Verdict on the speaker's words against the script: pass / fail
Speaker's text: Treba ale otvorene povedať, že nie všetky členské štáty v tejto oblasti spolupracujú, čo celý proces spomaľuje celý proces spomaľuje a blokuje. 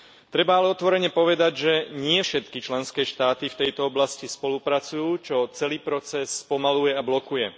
fail